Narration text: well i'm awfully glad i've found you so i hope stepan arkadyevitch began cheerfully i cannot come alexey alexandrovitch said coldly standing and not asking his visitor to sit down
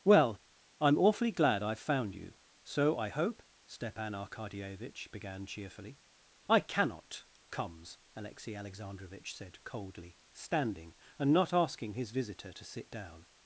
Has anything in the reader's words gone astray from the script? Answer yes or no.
yes